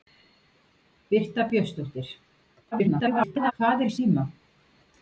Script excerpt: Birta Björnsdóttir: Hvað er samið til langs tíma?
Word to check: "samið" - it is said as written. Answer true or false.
false